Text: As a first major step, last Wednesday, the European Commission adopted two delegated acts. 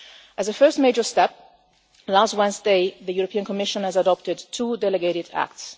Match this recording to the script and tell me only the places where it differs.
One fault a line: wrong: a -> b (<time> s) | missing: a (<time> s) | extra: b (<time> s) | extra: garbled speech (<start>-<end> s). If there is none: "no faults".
no faults